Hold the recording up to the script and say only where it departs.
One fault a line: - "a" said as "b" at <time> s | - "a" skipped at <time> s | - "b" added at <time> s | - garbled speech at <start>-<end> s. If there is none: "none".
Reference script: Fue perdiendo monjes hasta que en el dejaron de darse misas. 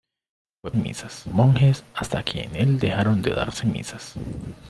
- "perdiendo" said as "misas" at 0.8 s